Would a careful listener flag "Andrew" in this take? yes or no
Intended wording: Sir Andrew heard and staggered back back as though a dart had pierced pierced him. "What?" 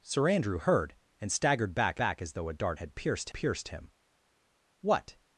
no